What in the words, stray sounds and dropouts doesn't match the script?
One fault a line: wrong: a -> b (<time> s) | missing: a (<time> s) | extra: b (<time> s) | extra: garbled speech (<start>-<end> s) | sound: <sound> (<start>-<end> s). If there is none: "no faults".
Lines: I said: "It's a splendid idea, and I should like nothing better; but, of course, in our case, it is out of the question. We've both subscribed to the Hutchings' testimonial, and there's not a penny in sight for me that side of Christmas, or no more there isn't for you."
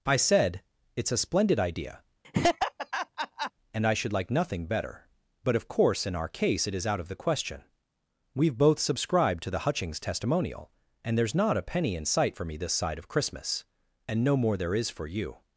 sound: laugh (2.2-3.5 s)
wrong: that -> this (12.6 s)
wrong: or -> and (14.1 s)
wrong: isn't -> is (14.7 s)